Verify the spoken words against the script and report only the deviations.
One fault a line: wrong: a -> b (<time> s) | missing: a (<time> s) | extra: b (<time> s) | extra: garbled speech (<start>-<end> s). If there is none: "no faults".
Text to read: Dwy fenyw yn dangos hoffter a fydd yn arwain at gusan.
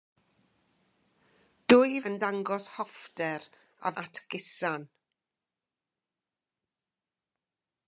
missing: fenyw (2.0 s)
missing: fydd yn arwain (3.9 s)